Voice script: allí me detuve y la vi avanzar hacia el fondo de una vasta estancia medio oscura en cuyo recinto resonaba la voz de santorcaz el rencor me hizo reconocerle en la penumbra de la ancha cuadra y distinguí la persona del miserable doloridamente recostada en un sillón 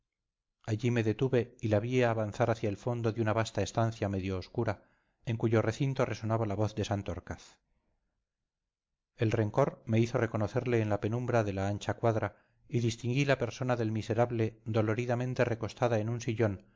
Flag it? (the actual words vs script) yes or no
no